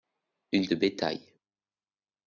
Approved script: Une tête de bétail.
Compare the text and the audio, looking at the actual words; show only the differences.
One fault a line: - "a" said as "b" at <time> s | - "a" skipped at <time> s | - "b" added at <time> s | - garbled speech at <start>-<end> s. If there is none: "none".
- "tête" skipped at 0.7 s